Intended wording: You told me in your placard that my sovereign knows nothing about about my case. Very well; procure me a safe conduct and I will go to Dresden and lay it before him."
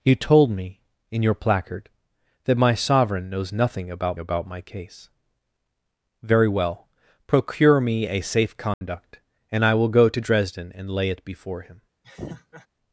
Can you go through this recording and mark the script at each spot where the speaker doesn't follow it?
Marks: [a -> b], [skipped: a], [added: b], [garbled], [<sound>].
You told me in your placard that my sovereign knows nothing about about my case. Very well; procure me a safe conduct [dropout] and I will go to Dresden and lay it before him." [laugh]